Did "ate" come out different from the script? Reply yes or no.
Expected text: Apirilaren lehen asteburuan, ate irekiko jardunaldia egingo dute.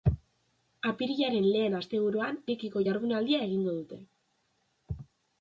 yes